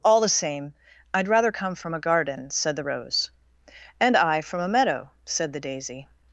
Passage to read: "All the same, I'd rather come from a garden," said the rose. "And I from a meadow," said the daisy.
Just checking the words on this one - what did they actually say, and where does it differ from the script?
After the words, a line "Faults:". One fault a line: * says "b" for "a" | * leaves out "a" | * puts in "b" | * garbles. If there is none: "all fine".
"All the same, I'd rather come from a garden," said the rose. "And I from a meadow," said the daisy.
Faults:
all fine